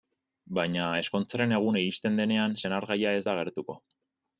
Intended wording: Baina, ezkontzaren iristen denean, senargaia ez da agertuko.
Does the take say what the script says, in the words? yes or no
no